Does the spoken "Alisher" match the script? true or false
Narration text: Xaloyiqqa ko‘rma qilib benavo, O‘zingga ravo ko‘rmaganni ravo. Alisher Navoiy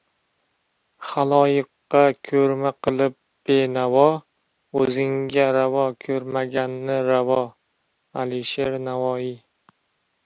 true